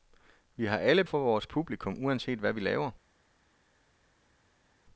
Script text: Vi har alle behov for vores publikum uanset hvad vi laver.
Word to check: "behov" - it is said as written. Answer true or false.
false